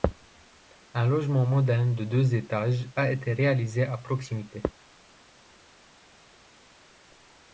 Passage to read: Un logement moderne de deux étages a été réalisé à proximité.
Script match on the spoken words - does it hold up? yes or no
yes